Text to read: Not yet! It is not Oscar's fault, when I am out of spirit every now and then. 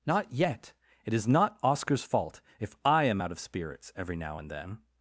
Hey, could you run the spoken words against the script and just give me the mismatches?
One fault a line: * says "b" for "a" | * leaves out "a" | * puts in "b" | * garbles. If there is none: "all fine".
* says "if" for "when"
* says "spirits" for "spirit"